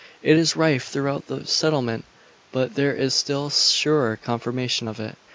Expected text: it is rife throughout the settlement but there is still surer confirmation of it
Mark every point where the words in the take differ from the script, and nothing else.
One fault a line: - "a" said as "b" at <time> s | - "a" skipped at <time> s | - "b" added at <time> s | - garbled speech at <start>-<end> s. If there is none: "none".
none